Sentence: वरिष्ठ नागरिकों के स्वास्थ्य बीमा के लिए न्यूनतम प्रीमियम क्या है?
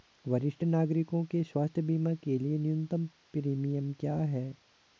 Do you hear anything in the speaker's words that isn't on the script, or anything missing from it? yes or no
no